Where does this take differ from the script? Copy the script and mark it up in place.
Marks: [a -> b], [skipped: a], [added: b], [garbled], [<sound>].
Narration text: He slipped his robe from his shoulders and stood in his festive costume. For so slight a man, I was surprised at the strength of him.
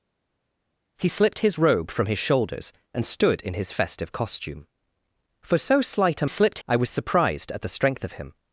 He slipped his robe from his shoulders and stood in his festive costume. For so slight a [man, -> slipped] I was surprised at the strength of him.